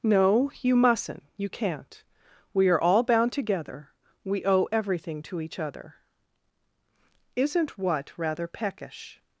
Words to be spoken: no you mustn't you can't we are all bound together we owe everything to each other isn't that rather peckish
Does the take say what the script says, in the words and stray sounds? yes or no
no